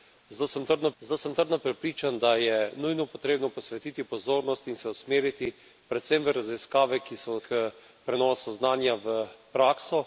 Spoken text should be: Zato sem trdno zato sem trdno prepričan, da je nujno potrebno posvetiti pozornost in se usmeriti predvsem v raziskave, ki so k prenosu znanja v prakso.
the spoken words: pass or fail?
pass